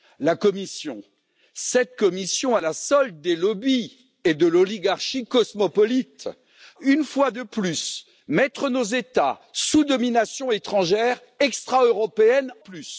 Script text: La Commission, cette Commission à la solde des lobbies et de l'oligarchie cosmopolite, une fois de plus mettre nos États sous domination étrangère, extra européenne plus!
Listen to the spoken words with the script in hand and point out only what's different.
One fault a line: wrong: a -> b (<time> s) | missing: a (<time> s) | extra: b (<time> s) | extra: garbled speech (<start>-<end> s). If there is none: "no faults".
no faults